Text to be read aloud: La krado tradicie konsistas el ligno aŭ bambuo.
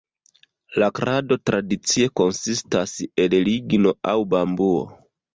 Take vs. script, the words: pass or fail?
pass